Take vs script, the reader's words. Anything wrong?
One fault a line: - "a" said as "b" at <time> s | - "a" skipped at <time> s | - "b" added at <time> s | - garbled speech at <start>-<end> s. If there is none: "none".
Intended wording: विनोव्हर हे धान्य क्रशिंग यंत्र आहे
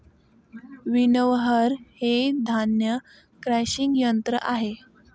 none